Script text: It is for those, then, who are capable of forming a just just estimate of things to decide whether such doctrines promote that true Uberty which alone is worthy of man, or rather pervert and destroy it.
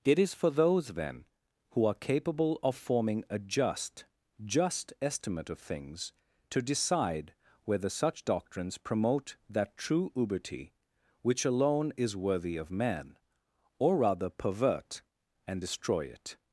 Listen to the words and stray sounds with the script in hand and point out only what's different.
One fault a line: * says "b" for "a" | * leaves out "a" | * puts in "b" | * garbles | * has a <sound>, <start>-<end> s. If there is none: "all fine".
all fine